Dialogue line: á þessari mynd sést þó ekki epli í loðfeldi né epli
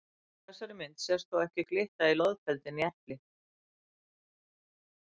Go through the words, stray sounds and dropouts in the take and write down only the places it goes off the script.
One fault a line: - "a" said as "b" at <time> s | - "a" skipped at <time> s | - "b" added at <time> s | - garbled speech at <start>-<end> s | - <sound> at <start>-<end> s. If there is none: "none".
- "epli" said as "glitta" at 1.7 s